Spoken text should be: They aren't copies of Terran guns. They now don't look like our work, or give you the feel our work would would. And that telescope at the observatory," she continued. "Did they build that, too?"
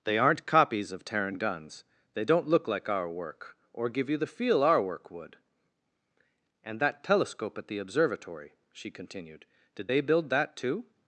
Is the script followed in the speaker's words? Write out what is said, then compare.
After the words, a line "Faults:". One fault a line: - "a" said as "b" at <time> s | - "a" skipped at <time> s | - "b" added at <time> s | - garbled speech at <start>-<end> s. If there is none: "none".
They aren't copies of Terran guns. They don't look like our work, or give you the feel our work would. And that telescope at the observatory," she continued. "Did they build that, too?"
Faults:
- "now" skipped at 2.2 s
- "would" skipped at 5.4 s